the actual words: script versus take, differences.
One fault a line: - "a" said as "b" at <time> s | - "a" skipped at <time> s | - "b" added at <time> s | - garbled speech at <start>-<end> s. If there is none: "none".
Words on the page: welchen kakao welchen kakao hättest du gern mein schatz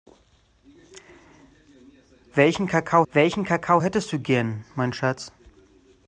none